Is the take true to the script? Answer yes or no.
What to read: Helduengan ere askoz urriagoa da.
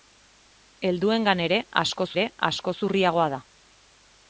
no